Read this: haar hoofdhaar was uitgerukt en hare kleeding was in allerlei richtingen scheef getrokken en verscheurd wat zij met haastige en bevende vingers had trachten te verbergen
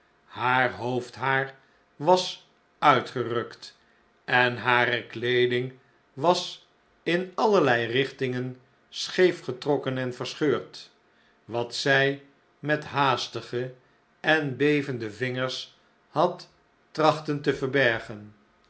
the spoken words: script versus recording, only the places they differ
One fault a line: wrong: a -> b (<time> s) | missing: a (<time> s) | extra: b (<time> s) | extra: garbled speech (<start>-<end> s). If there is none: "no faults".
no faults